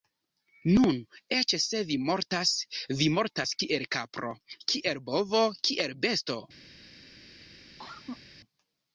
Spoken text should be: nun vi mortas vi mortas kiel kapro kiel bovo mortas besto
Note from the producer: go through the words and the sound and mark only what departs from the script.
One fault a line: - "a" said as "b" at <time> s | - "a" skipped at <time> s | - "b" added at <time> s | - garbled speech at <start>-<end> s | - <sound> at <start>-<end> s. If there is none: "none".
- "eĉ se" added at 1.4 s
- "mortas" said as "kiel" at 5.7 s
- cough at 7.8-8.2 s